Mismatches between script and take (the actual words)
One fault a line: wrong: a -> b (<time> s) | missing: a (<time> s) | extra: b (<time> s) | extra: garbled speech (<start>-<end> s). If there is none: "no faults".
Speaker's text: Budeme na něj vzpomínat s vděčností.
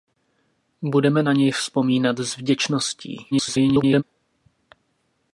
extra: garbled speech (3.3-4.0 s)